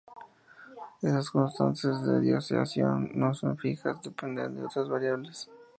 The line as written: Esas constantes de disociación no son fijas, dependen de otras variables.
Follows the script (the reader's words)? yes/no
yes